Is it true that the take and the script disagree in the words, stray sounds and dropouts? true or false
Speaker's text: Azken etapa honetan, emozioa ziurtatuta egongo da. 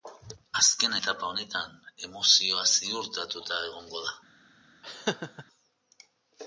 true